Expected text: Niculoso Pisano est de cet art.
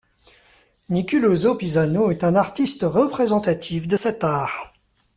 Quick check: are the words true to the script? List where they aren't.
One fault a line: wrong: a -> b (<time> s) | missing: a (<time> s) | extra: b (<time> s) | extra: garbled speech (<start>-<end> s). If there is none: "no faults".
extra: un artiste représentatif (2.2 s)